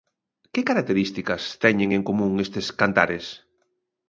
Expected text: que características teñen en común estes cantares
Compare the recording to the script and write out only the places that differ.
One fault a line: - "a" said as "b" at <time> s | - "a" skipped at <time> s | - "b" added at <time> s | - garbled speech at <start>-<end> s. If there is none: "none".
none